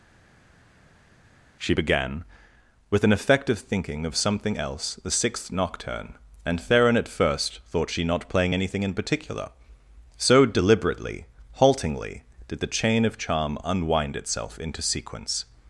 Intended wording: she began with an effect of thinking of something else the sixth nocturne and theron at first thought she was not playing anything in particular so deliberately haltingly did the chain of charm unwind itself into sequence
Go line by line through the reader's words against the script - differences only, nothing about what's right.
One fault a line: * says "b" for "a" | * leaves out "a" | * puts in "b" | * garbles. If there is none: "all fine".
* leaves out "was"